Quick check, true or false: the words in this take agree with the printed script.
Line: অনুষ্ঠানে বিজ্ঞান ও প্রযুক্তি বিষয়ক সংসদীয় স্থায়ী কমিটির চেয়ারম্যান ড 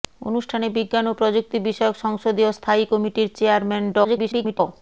false